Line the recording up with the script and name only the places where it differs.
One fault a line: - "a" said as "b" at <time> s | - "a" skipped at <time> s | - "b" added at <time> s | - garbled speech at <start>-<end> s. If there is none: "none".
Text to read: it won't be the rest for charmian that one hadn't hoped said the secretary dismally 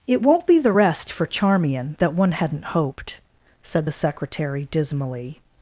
none